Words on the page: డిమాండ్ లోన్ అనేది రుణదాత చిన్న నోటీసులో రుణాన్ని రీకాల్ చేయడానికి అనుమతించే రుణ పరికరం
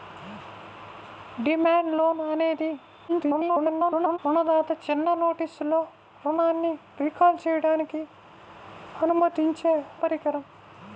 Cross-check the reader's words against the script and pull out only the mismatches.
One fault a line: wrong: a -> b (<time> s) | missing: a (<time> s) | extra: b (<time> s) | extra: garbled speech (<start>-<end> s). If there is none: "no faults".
extra: garbled speech (3.1-4.2 s)
missing: రుణ (9.7 s)